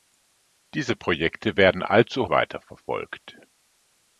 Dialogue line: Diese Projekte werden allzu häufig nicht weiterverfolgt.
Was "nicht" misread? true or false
true